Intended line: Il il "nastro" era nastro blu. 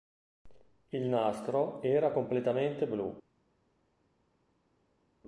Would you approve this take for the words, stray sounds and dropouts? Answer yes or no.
no